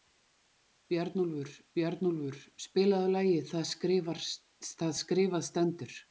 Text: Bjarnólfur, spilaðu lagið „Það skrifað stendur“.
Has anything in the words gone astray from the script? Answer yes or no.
yes